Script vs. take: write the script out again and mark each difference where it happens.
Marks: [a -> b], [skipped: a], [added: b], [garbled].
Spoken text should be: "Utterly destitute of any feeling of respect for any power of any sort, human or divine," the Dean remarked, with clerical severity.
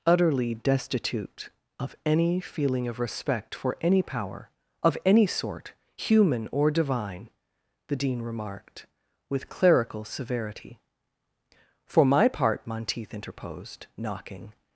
"Utterly destitute of any feeling of respect for any power of any sort, human or divine," the Dean remarked, with clerical severity. [added: For my part Monteith interposed knocking]